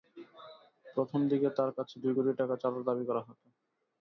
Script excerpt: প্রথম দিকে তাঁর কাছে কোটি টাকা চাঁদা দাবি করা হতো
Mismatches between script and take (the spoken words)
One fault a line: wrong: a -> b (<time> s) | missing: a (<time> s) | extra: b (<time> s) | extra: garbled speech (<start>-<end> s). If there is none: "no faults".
extra: দুই (2.0 s)